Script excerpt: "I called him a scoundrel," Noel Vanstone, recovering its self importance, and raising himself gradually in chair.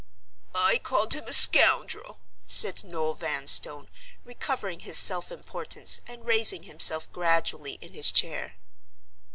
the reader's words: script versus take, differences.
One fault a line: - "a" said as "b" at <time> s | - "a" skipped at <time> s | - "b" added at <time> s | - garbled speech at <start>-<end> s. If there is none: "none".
- "said" added at 2.5 s
- "its" said as "his" at 4.8 s
- "his" added at 7.9 s